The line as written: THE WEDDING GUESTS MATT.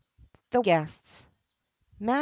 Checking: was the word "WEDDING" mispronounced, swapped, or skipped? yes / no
yes